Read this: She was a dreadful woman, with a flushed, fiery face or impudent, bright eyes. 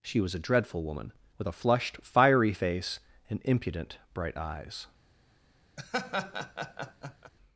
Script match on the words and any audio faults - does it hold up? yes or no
no